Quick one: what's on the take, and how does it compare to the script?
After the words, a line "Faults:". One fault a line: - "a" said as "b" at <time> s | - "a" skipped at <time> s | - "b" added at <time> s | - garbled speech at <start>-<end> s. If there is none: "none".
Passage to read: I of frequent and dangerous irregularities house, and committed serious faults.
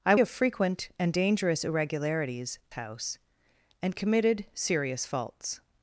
I of frequent and dangerous irregularities house, and committed serious faults.
Faults:
none